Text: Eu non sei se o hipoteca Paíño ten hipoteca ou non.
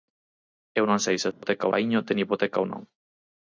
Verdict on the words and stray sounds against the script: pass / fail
fail